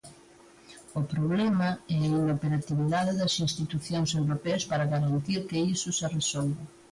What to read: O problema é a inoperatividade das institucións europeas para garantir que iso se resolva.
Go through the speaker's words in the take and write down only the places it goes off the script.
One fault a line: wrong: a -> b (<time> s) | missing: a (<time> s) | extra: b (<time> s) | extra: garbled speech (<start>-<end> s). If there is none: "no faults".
no faults